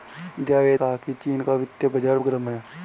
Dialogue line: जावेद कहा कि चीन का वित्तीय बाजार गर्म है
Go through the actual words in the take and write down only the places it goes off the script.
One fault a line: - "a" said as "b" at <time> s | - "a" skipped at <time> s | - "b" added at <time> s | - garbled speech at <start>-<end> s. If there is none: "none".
none